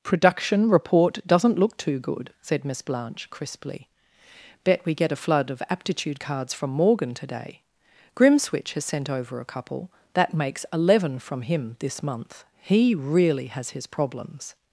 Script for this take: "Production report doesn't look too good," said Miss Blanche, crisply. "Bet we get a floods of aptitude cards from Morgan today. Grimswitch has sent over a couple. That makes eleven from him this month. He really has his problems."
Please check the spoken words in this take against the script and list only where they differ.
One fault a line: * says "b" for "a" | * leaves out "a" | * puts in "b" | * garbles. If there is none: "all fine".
* says "flood" for "floods"